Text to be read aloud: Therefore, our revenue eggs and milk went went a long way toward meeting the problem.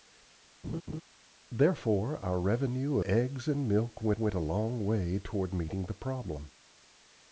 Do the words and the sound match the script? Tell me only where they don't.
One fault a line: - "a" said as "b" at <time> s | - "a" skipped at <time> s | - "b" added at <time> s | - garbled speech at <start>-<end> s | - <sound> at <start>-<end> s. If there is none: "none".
- laugh at 0.6-1.0 s